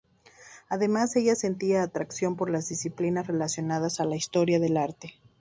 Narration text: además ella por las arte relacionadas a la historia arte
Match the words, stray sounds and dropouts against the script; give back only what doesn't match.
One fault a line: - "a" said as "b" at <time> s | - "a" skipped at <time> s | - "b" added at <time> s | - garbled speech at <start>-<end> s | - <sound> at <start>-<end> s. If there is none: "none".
- "sentía atracción" added at 1.4 s
- "arte" said as "disciplinas" at 2.7 s
- "del" added at 4.6 s